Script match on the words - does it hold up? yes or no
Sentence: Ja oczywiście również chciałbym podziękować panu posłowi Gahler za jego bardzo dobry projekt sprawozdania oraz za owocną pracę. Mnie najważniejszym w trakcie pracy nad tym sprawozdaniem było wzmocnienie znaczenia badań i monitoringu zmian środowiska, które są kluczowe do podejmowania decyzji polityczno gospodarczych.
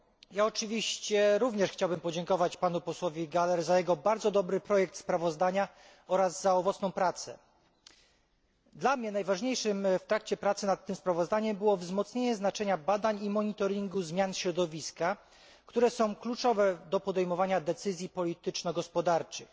no